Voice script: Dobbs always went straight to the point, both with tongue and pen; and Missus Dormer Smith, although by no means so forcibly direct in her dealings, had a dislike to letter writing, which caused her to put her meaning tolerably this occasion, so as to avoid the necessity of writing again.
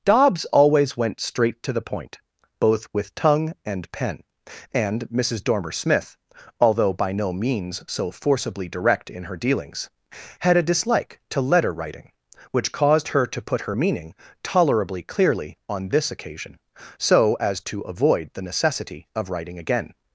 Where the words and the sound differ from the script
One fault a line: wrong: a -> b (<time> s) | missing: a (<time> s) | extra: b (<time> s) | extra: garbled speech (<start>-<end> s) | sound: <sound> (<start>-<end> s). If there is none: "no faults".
extra: clearly on (15.0 s)